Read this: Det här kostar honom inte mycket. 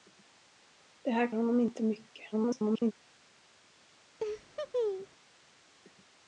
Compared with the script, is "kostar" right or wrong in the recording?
wrong